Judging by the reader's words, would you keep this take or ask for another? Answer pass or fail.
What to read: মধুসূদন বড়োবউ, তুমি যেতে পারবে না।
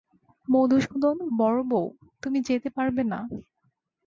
pass